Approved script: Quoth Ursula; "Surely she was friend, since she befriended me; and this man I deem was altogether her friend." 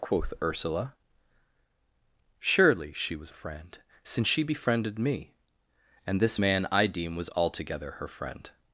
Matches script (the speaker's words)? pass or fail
pass